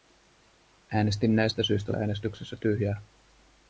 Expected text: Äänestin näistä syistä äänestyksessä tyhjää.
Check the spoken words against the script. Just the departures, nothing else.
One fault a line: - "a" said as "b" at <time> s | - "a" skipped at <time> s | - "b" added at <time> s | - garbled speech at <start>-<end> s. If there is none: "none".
none